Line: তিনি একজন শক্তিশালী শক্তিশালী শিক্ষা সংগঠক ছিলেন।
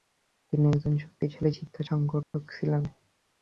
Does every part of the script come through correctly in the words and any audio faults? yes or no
no